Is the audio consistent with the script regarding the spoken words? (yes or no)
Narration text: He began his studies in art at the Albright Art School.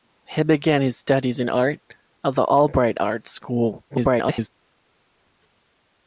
no